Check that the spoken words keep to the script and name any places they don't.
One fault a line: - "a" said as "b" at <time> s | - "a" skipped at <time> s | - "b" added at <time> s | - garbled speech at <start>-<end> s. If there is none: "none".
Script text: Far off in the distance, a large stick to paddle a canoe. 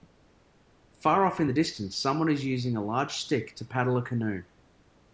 - "someone is using" added at 2.0 s